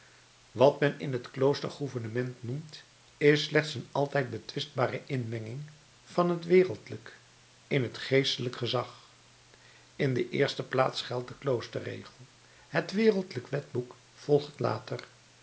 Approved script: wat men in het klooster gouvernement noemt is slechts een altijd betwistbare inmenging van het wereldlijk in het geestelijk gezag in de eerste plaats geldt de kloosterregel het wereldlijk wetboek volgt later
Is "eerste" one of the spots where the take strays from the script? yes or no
no